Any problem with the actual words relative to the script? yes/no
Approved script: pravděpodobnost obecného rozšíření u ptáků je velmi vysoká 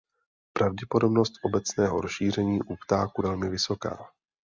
yes